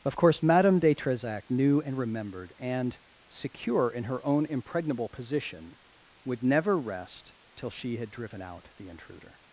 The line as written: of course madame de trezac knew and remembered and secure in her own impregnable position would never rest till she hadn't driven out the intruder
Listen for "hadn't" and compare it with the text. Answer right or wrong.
wrong